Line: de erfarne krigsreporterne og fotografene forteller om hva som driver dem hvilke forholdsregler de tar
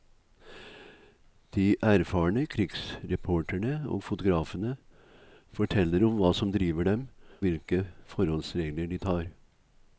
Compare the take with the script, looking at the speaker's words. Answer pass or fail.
pass